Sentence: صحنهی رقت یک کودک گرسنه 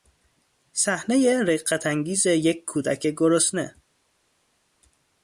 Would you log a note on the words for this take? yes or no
yes